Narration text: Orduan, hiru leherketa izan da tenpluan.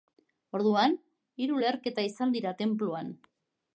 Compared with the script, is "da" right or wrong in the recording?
wrong